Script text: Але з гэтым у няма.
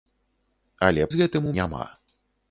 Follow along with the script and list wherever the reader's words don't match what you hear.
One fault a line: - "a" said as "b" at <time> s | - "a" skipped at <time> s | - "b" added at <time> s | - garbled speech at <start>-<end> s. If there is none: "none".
none